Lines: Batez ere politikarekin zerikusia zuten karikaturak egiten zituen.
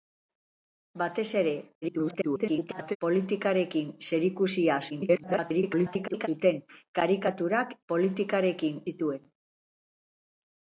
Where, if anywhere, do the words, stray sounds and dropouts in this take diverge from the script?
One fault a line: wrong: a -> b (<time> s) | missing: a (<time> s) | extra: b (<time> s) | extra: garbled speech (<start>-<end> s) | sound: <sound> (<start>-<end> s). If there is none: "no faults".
extra: garbled speech (1.8-3.0 s)
extra: garbled speech (4.9-6.3 s)
wrong: egiten -> politikarekin (7.9 s)